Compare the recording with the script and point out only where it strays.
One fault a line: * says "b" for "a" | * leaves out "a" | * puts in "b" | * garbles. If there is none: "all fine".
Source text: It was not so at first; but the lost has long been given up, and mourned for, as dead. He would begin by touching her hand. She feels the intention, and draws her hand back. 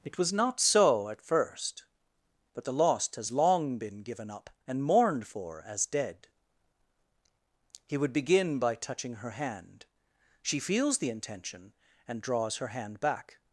all fine